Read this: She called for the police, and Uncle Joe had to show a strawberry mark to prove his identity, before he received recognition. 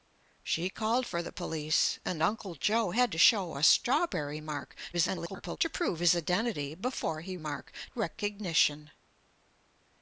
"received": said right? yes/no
no